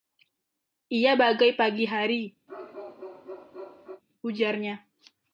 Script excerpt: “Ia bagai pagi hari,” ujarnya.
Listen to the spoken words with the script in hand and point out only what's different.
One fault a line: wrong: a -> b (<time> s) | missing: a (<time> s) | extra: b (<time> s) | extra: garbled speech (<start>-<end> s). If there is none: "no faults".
no faults